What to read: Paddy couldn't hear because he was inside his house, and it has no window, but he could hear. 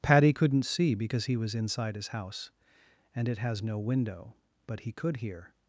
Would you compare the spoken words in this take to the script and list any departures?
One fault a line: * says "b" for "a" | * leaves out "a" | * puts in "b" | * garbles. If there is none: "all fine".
* says "see" for "hear"